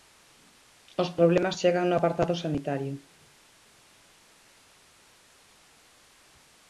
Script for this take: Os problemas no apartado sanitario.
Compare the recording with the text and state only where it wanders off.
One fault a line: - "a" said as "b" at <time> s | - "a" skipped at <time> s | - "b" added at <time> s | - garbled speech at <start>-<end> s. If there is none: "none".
- "chegan" added at 1.6 s